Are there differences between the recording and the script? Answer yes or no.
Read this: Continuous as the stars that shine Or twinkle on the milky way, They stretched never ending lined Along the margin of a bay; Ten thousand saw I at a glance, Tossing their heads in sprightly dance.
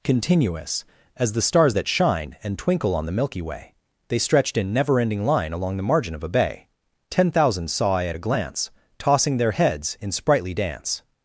yes